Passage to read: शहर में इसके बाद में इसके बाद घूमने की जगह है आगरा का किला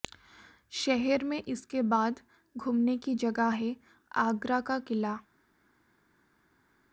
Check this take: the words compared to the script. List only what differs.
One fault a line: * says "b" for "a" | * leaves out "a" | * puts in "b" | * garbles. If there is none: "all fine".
* leaves out "में इसके बाद"